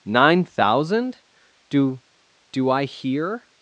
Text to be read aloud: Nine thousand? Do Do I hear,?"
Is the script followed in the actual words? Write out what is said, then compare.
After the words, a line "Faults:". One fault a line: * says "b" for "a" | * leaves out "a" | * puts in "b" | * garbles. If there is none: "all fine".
Nine thousand? Do Do I hear,?"
Faults:
all fine